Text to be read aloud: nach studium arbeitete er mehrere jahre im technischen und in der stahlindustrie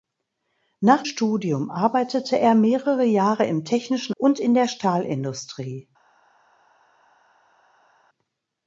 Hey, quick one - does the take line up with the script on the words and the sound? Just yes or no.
yes